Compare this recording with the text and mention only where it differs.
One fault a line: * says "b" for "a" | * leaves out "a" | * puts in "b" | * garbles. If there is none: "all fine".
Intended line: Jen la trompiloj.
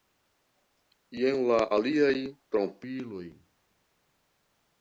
* puts in "aliaj"